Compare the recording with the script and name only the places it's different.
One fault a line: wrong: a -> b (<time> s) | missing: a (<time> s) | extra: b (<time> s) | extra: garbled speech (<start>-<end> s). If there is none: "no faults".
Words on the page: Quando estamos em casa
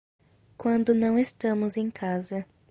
extra: não (0.9 s)